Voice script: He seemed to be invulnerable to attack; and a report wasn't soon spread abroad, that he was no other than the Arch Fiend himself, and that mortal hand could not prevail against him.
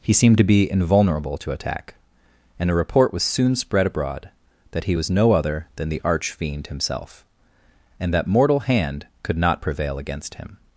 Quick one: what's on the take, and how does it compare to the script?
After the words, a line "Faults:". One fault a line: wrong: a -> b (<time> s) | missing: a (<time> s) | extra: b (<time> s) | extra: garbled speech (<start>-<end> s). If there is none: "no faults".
He seemed to be invulnerable to attack; and a report was soon spread abroad, that he was no other than the Arch Fiend himself, and that mortal hand could not prevail against him.
Faults:
wrong: wasn't -> was (3.1 s)